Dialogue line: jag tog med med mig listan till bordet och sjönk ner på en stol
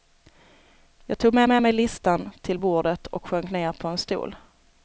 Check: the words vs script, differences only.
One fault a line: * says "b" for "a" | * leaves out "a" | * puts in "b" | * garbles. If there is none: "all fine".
all fine